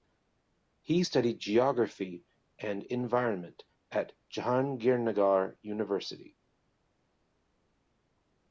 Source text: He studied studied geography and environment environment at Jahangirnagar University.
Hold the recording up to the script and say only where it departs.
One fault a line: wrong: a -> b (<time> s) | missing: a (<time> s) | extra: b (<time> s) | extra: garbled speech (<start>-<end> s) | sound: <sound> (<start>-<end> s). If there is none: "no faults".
missing: studied (1.4 s)
missing: environment (3.6 s)